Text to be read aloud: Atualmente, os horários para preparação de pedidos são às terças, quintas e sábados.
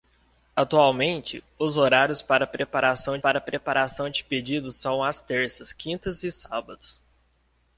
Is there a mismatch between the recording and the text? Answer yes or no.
yes